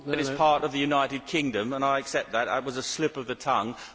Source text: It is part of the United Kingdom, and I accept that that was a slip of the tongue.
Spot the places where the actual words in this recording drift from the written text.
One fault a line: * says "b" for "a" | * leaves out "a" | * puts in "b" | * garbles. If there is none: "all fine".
all fine